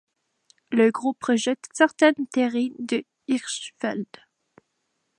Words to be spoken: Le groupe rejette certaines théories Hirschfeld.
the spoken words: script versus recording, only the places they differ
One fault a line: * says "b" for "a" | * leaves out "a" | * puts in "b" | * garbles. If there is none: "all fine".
* puts in "de"